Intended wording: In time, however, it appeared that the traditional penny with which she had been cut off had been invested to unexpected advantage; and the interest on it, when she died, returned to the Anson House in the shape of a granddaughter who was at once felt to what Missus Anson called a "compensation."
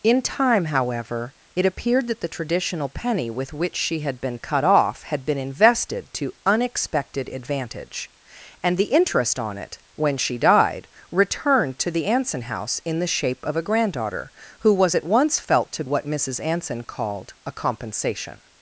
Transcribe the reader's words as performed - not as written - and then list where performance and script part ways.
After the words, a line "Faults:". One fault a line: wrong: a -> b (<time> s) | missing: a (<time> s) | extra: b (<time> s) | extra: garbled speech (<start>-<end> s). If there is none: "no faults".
In time, however, it appeared that the traditional penny with which she had been cut off had been invested to unexpected advantage; and the interest on it, when she died, returned to the Anson House in the shape of a granddaughter who was at once felt to what Missus Anson called a "compensation."
Faults:
no faults